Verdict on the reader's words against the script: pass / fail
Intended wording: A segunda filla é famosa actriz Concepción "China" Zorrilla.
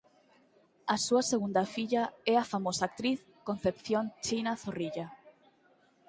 fail